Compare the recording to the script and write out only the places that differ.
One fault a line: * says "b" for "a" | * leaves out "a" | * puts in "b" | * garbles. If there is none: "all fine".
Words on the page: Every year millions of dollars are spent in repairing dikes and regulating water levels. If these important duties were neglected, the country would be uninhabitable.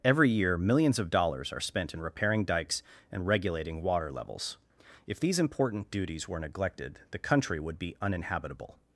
all fine